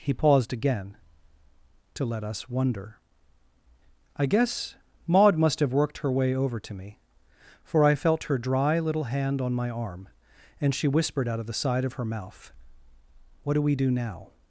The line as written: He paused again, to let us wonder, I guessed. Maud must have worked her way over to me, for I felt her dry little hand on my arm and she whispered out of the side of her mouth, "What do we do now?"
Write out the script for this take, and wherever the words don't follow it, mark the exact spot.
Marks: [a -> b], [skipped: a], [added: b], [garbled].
He paused again, to let us wonder, I [guessed. -> guess] Maud must have worked her way over to me, for I felt her dry little hand on my arm and she whispered out of the side of her mouth, "What do we do now?"